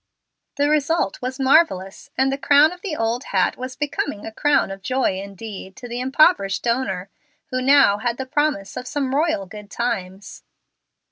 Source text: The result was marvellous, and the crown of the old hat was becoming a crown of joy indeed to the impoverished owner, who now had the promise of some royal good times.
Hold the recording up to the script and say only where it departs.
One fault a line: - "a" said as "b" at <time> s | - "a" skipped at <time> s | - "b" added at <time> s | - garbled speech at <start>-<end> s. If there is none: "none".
none